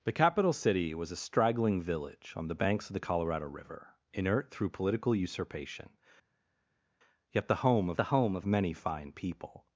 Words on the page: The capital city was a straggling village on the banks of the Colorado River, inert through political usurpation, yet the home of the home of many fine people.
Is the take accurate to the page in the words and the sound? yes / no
yes